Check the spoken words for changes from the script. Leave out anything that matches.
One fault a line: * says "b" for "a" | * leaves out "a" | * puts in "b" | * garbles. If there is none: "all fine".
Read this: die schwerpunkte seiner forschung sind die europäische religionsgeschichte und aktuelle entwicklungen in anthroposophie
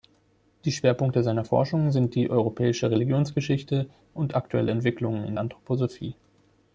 all fine